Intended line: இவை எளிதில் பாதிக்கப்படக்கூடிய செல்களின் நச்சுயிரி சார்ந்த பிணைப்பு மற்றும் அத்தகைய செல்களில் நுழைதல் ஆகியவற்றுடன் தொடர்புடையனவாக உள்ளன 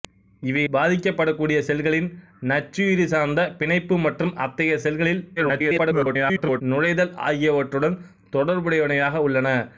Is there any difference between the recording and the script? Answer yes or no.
yes